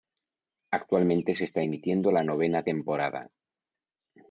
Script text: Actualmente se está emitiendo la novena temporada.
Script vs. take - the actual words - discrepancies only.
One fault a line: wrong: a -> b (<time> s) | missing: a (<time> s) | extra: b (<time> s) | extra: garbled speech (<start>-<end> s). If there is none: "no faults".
no faults